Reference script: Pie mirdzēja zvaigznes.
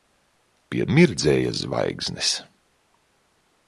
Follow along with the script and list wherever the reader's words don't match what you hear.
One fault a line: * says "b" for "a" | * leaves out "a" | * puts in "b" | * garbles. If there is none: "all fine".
all fine